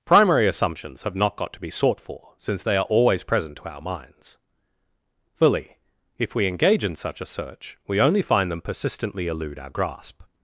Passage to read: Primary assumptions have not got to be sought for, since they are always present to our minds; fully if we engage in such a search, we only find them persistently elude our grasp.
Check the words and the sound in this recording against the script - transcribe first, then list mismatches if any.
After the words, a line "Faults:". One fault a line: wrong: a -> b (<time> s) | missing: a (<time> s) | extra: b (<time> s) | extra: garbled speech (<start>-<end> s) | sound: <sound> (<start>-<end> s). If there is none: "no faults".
Primary assumptions have not got to be sought for, since they are always present to our minds; fully if we engage in such a search, we only find them persistently elude our grasp.
Faults:
no faults